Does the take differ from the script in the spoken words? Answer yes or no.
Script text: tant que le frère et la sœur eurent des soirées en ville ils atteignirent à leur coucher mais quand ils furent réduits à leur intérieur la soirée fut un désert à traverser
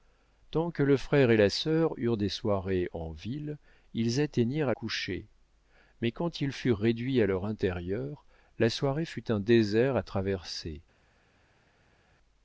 yes